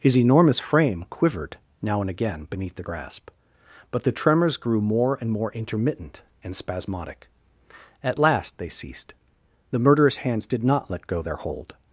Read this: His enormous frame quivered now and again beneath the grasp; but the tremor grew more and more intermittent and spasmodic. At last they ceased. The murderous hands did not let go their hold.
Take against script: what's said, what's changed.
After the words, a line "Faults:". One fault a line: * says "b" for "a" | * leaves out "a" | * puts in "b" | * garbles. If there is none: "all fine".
His enormous frame quivered now and again beneath the grasp; but the tremors grew more and more intermittent and spasmodic. At last they ceased. The murderous hands did not let go their hold.
Faults:
* says "tremors" for "tremor"